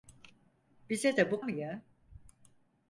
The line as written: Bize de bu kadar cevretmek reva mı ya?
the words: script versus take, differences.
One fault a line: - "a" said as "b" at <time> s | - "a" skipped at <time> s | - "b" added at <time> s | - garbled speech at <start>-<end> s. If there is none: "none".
- "kadar cevretmek reva" skipped at 1.4 s